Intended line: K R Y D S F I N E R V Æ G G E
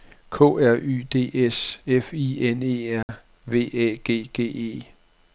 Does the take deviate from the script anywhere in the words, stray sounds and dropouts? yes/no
yes